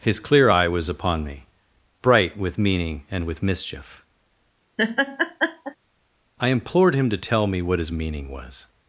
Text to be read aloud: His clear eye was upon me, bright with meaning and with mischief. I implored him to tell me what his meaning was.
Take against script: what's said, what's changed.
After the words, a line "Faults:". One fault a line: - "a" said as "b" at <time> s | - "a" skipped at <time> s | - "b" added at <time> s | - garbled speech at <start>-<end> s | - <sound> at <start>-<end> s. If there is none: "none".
His clear eye was upon me, bright with meaning and with mischief. I implored him to tell me what his meaning was.
Faults:
- laugh at 4.8-5.8 s